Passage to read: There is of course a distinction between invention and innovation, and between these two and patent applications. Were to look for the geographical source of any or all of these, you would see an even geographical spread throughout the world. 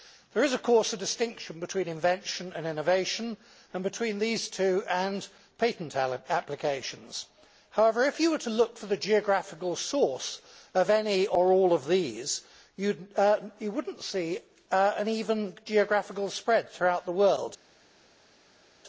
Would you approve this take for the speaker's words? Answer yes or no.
no